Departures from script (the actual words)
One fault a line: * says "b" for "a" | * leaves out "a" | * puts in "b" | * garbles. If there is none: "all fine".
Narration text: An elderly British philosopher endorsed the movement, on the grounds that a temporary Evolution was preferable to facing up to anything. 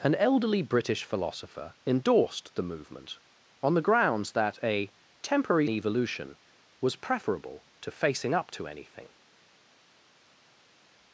all fine